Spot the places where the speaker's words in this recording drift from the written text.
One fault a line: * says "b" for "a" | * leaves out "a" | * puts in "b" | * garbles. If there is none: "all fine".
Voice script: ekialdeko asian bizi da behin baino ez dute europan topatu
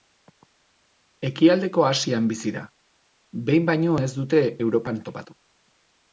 all fine